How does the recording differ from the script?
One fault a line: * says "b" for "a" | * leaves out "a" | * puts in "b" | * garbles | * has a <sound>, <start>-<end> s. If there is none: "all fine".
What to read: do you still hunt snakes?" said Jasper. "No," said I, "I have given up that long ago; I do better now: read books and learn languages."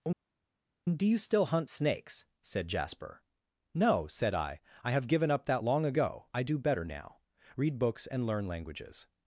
all fine